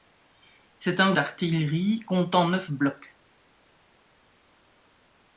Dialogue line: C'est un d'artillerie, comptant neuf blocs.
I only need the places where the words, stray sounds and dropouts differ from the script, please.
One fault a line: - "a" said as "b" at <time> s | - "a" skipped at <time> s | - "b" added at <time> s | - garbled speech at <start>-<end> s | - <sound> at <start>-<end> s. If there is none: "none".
none